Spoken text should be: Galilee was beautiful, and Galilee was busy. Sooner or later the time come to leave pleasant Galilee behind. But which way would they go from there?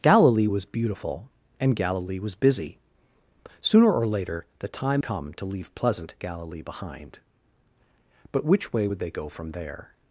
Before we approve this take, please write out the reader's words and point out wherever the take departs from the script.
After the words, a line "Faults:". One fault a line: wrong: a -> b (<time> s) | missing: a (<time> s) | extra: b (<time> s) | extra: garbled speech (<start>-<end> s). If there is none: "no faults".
Galilee was beautiful, and Galilee was busy. Sooner or later the time come to leave pleasant Galilee behind. But which way would they go from there?
Faults:
no faults